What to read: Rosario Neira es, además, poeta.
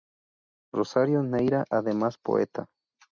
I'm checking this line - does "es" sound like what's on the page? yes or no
no